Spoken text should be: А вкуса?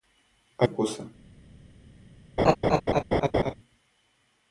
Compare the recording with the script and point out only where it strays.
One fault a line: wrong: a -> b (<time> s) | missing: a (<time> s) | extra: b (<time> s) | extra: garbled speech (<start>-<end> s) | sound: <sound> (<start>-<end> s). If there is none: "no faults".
sound: laugh (2.4-3.5 s)